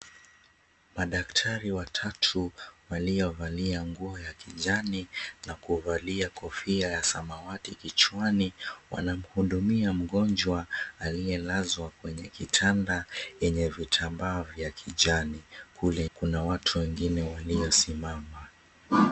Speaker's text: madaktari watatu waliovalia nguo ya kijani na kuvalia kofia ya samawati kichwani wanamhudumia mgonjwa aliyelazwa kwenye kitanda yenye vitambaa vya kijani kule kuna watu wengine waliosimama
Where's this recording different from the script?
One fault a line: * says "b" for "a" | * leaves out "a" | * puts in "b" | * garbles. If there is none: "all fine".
all fine